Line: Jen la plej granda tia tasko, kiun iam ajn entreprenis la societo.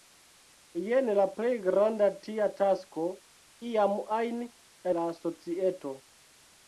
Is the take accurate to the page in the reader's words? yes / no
no